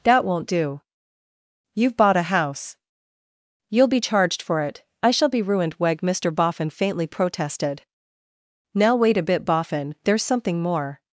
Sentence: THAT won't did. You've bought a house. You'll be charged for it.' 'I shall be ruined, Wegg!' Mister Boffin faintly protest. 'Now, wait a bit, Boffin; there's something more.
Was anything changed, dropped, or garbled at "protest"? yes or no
yes